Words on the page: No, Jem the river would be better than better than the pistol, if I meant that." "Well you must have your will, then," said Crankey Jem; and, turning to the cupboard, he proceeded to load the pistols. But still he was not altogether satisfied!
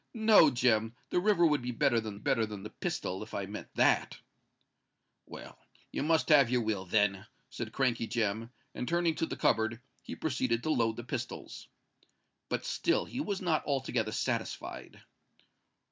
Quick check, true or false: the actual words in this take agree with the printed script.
true